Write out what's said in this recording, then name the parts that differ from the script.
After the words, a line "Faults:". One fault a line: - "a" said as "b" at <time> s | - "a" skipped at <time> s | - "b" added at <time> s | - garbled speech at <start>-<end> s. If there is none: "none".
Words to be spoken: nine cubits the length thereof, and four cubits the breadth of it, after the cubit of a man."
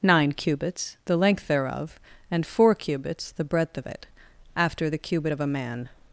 nine cubits the length thereof, and four cubits the breadth of it, after the cubit of a man."
Faults:
none